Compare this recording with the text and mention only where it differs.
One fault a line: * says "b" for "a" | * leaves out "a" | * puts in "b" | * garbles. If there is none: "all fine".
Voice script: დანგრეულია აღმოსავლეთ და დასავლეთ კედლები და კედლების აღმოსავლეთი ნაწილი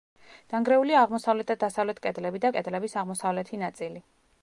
all fine